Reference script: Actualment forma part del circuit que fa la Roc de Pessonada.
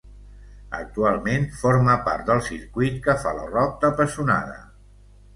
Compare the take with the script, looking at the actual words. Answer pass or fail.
pass